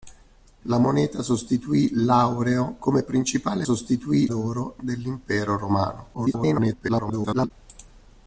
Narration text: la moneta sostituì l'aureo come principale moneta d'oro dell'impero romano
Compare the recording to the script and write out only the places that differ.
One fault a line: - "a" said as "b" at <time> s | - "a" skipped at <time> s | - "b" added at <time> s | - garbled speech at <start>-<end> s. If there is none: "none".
- "moneta" said as "sostituì" at 3.6 s
- garbled speech at 6.1-7.5 s